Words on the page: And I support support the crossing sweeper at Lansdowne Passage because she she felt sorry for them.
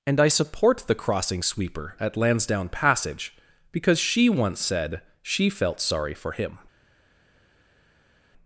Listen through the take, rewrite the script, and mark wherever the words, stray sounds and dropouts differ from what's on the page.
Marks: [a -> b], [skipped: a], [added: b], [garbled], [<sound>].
And I support [skipped: support] the crossing sweeper at Lansdowne Passage because she [added: once said] she felt sorry for [them. -> him]